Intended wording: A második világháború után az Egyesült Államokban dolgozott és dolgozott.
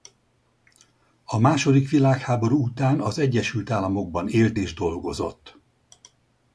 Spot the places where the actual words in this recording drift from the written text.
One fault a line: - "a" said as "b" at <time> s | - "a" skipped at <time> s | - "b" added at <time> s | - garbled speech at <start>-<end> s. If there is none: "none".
- "dolgozott" said as "élt" at 4.3 s